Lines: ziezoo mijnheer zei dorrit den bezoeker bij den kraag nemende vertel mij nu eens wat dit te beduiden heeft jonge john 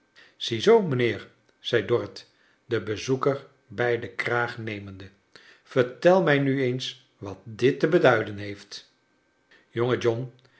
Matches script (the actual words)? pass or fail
pass